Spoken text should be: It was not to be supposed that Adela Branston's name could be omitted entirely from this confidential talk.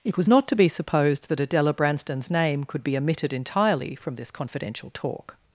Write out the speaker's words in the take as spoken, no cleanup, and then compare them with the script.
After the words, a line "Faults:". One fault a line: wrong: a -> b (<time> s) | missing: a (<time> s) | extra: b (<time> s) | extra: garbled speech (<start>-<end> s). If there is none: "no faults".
It was not to be supposed that Adela Branston's name could be omitted entirely from this confidential talk.
Faults:
no faults